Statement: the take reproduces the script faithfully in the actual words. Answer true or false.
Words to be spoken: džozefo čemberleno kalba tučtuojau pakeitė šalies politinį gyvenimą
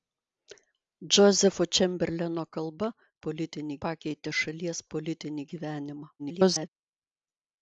false